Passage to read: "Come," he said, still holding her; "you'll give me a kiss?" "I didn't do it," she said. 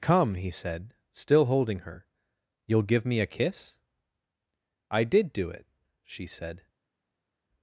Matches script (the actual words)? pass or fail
fail